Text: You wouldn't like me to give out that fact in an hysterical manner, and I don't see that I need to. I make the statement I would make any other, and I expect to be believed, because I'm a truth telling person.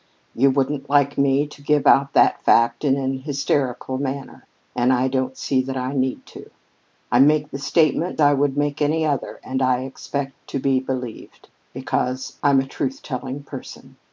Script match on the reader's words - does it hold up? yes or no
yes